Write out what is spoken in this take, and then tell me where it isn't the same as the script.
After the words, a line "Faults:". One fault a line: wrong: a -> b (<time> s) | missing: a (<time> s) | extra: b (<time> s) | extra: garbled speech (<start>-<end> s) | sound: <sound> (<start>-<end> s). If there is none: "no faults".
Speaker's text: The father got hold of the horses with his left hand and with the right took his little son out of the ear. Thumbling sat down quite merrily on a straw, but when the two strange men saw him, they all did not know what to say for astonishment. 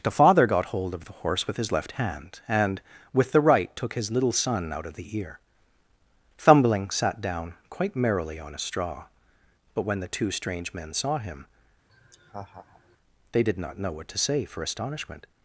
The father got hold of the horse with his left hand and with the right took his little son out of the ear. Thumbling sat down quite merrily on a straw, but when the two strange men saw him, they did not know what to say for astonishment.
Faults:
wrong: horses -> horse (1.1 s)
sound: laugh (11.9-13.0 s)
missing: all (13.4 s)